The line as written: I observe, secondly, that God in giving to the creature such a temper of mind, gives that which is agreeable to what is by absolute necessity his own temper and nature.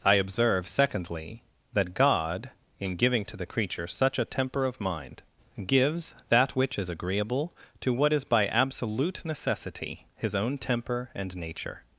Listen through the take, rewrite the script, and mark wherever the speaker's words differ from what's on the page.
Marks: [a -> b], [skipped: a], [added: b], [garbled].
I observe, secondly, that God in giving to the creature such a temper of mind, gives that which is agreeable to what is by absolute necessity his own temper and nature.